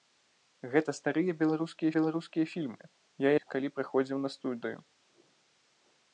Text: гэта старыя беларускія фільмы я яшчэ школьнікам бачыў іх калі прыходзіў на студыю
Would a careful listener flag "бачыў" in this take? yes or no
yes